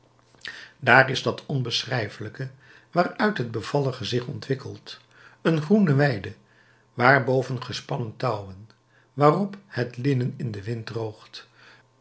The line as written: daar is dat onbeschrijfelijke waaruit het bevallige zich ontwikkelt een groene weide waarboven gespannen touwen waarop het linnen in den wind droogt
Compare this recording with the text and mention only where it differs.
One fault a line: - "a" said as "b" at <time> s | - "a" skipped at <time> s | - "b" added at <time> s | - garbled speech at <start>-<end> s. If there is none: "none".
none